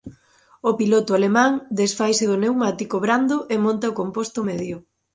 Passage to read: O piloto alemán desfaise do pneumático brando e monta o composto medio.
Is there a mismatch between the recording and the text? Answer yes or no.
no